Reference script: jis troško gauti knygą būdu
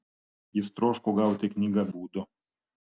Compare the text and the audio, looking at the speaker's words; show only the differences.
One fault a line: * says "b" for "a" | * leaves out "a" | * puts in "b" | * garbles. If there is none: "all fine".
all fine